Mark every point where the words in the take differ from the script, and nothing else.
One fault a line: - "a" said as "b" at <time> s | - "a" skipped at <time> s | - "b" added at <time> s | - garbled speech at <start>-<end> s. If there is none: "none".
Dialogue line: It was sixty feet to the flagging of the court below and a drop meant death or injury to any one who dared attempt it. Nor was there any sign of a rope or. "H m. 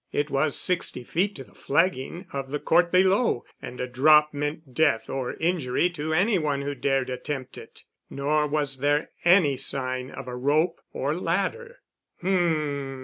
- "ladder" added at 11.1 s